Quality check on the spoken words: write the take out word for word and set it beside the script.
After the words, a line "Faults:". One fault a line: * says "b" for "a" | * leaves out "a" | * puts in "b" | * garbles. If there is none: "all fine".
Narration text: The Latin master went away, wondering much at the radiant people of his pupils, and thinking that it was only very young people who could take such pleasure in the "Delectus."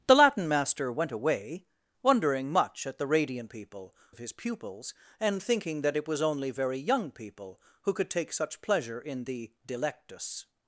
The Latin master went away, wondering much at the radiant people of his pupils, and thinking that it was only very young people who could take such pleasure in the "Delectus."
Faults:
all fine